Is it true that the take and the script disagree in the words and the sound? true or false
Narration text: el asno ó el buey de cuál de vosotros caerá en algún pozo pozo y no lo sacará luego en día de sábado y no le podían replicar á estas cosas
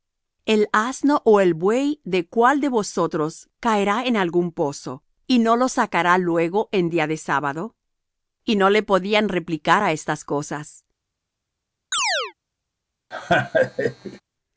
true